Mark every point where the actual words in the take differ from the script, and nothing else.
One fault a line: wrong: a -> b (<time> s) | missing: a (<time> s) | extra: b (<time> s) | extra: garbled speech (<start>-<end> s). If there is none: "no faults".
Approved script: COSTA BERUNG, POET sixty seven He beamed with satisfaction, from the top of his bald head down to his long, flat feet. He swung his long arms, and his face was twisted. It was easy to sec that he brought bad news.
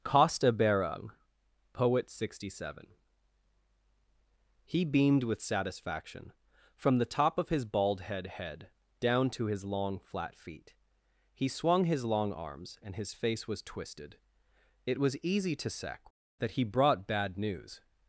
extra: head (8.2 s)